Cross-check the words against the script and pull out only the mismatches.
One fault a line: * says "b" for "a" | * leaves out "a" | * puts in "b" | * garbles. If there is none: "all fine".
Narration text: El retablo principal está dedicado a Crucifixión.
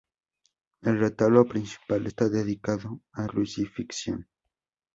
all fine